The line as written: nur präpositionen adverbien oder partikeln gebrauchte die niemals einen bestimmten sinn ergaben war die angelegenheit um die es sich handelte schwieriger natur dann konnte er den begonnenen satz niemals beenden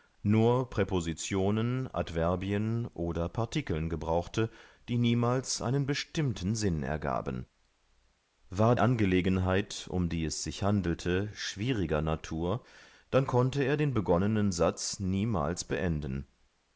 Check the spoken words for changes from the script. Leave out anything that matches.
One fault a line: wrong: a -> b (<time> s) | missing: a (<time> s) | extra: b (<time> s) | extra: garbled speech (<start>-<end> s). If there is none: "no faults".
missing: die (8.8 s)